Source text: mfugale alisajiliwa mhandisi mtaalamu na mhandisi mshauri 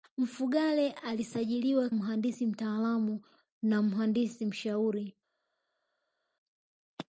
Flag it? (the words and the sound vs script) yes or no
no